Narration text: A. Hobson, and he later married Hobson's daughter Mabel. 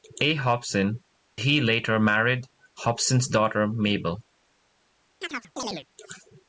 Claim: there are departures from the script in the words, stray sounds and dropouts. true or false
true